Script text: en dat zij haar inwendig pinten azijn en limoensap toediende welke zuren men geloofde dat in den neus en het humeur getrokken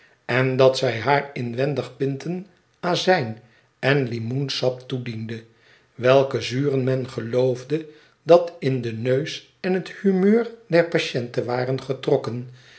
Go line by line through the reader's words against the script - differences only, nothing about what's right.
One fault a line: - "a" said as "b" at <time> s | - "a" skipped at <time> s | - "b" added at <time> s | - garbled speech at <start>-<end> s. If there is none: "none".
- "der patiënte waren" added at 10.7 s